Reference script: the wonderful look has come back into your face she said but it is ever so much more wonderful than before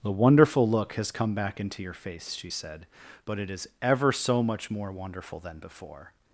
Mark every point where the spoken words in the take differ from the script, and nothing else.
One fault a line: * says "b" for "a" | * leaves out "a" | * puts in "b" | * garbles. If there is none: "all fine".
all fine